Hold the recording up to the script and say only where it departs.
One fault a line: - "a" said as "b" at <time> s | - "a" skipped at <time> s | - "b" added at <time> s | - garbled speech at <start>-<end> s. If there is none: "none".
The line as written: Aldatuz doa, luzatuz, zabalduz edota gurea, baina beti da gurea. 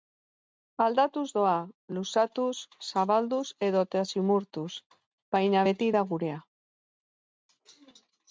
- "gurea" said as "zimurtuz" at 4.1 s